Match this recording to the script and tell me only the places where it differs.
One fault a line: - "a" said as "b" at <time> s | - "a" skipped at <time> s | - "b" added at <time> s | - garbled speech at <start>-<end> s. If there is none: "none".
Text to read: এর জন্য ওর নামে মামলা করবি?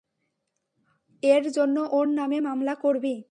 none